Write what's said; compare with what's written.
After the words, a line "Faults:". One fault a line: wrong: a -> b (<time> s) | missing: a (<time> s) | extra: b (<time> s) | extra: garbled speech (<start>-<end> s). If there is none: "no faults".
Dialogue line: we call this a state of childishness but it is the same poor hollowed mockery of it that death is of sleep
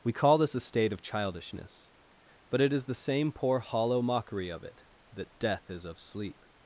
we call this a state of childishness but it is the same poor hollow mockery of it that death is of sleep
Faults:
wrong: hollowed -> hollow (3.6 s)